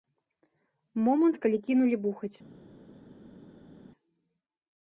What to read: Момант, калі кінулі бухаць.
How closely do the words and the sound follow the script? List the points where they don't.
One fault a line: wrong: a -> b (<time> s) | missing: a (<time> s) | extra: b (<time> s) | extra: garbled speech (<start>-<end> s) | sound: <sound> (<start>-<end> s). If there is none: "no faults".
no faults